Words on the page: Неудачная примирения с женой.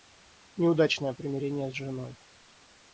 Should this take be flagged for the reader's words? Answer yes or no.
no